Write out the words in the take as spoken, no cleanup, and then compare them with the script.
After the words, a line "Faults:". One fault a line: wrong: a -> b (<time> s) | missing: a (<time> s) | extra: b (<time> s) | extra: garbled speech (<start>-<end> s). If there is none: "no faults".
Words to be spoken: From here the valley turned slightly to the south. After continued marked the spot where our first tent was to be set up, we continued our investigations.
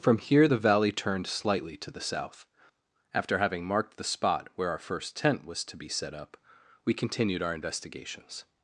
From here the valley turned slightly to the south. After having marked the spot where our first tent was to be set up, we continued our investigations.
Faults:
wrong: continued -> having (3.4 s)